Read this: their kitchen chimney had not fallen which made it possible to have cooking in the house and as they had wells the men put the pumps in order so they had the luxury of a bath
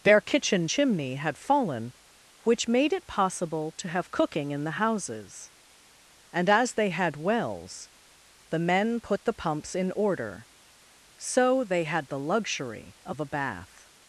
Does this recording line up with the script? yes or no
no